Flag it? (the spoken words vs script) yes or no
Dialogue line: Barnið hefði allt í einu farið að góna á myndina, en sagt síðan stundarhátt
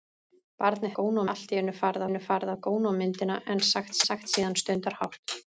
yes